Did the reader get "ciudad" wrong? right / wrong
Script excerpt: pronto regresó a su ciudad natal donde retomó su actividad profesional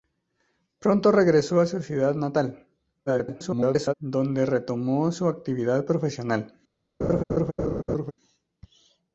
right